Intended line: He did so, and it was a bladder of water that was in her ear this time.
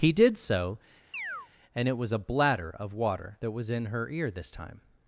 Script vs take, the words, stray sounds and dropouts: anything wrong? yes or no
yes